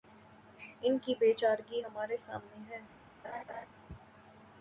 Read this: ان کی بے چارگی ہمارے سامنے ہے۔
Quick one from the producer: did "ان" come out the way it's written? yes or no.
yes